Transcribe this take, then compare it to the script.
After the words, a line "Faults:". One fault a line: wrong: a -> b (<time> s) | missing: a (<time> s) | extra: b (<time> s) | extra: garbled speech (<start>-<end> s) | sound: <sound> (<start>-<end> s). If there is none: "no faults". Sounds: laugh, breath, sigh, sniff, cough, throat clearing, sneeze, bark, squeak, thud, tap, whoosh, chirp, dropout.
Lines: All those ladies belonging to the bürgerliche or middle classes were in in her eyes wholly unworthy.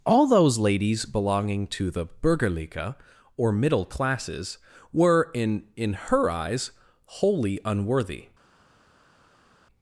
All those ladies belonging to the bürgerliche or middle classes were in in her eyes wholly unworthy.
Faults:
no faults